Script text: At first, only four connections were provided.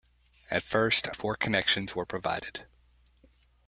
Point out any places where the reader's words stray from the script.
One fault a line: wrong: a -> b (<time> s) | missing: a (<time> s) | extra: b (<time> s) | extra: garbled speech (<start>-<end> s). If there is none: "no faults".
missing: only (1.1 s)